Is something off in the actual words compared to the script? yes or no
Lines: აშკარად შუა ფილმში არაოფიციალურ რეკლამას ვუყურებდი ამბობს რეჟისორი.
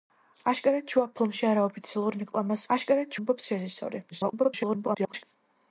yes